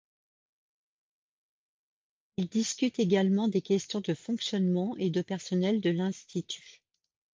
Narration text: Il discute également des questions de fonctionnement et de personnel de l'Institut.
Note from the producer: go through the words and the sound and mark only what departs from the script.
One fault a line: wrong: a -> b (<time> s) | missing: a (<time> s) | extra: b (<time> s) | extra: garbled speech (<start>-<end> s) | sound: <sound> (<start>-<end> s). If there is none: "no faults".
no faults